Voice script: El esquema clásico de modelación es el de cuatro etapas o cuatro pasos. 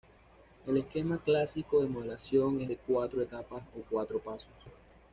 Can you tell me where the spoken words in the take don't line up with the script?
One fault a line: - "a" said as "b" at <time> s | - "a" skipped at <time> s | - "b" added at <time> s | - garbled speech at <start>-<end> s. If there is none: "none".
- "el" skipped at 2.7 s